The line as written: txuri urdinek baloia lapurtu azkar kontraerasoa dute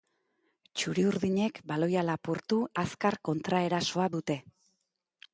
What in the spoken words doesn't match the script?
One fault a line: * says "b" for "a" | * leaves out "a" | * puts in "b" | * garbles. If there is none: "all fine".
all fine